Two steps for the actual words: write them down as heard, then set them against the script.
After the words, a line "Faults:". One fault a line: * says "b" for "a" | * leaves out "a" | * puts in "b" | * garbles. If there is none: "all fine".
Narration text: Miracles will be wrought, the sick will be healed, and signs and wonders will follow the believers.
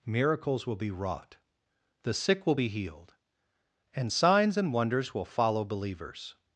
Miracles will be wrought, the sick will be healed, and signs and wonders will follow believers.
Faults:
* leaves out "the"